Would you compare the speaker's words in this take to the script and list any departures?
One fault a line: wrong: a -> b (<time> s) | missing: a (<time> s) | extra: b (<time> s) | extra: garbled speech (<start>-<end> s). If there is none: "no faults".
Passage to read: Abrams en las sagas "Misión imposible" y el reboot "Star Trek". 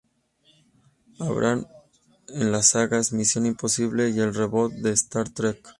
extra: de (4.7 s)